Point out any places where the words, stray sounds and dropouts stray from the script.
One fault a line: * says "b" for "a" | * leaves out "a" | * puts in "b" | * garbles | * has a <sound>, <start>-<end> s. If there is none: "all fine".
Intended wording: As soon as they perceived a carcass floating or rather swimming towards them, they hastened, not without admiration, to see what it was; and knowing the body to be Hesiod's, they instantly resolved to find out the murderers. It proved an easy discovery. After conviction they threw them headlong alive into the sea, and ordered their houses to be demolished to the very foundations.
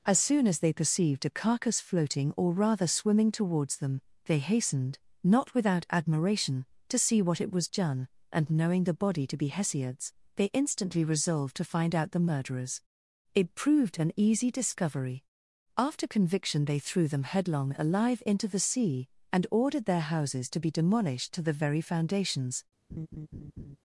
* puts in "done"
* has a laugh, 22.9-23.8 s